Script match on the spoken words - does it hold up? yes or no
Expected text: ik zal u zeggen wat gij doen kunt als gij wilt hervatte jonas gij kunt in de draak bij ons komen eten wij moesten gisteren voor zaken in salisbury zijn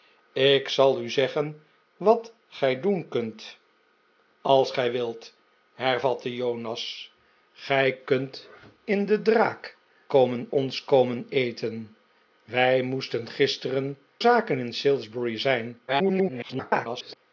no